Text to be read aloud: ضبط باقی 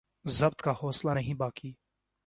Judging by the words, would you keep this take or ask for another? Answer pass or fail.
fail